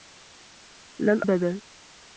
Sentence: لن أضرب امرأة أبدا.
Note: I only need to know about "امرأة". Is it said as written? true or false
false